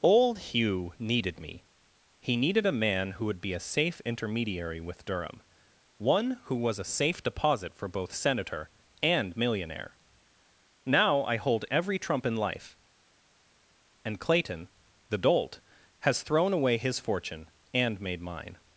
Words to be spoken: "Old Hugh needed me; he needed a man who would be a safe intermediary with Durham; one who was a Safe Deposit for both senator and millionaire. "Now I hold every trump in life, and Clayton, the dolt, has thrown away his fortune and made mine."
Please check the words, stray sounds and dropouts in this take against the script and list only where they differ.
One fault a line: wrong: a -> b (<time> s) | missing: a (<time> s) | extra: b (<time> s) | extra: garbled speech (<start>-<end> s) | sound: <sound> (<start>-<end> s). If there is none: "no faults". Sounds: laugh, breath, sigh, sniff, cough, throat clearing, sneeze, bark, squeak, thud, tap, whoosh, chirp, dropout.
no faults